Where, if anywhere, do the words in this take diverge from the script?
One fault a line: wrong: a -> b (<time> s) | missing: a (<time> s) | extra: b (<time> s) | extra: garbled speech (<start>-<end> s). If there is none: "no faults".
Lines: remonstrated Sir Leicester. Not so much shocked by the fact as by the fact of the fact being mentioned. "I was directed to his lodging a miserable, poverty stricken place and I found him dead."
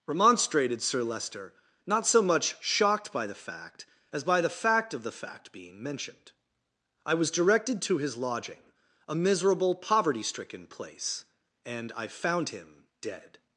no faults